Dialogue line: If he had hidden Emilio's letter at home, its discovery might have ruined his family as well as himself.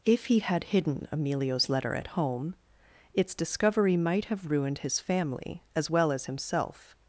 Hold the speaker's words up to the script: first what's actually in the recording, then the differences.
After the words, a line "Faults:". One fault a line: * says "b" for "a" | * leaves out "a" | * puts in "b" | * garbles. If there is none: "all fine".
If he had hidden Emilio's letter at home, its discovery might have ruined his family as well as himself.
Faults:
all fine